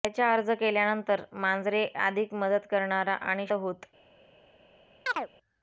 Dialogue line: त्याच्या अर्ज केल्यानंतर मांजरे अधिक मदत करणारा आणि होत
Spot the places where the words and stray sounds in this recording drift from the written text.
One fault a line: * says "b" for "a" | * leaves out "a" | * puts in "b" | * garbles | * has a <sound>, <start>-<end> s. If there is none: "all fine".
* has a chirp, 5.1-5.3 s